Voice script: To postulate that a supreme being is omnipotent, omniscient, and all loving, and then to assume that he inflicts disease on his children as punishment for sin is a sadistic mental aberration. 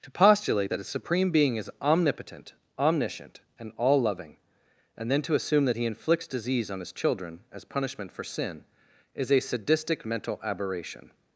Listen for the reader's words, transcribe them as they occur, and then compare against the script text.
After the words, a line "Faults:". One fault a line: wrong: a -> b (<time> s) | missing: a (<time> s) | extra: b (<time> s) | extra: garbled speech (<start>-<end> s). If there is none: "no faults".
To postulate that a supreme being is omnipotent, omniscient, and all loving, and then to assume that he inflicts disease on his children as punishment for sin is a sadistic mental aberration.
Faults:
no faults